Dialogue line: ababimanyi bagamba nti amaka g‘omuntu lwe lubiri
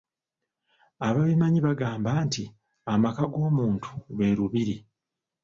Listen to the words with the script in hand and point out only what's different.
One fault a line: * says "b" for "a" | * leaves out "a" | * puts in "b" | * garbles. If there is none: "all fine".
all fine